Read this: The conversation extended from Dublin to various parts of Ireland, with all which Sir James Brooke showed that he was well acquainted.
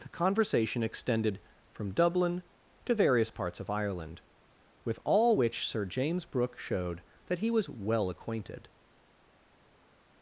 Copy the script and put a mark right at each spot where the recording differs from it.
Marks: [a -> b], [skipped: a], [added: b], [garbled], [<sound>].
The conversation extended from Dublin to various parts of Ireland, with all which Sir James Brooke showed that he was well acquainted.